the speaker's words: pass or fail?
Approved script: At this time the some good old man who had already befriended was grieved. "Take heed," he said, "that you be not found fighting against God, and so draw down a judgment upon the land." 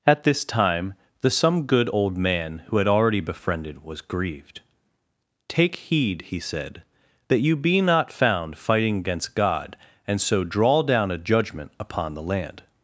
pass